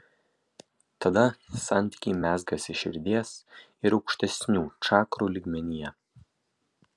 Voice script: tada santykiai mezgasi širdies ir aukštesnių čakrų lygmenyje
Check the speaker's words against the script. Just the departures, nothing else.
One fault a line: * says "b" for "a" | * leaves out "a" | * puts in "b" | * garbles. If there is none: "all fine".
all fine